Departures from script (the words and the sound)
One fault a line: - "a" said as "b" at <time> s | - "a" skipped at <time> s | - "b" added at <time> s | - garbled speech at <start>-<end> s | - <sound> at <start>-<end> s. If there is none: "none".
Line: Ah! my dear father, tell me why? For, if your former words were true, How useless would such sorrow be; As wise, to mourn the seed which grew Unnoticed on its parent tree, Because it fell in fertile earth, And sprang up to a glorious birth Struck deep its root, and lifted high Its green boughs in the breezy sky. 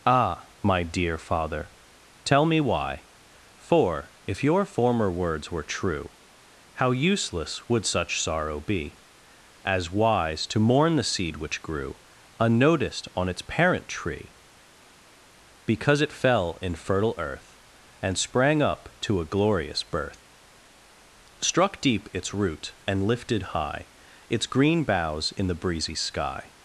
none